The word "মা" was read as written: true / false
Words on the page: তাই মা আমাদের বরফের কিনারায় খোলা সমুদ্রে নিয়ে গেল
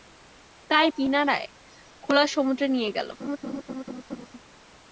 false